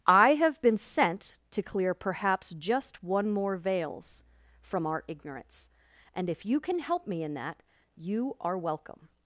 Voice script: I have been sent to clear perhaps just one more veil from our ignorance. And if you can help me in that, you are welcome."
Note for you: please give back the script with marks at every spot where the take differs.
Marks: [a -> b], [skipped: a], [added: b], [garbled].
I have been sent to clear perhaps just one more [veil -> veils] from our ignorance. And if you can help me in that, you are welcome."